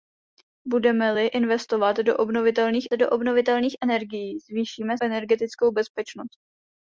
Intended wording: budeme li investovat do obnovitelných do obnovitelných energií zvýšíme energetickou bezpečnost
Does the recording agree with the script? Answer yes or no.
yes